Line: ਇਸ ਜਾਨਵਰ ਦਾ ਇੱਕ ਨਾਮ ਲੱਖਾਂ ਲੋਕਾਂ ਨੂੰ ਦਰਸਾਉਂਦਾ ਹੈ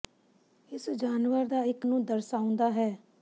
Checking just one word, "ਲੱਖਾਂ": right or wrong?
wrong